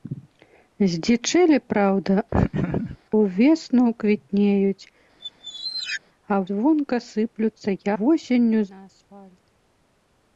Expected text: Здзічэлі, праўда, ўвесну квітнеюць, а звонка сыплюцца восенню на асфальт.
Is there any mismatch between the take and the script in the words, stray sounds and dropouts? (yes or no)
yes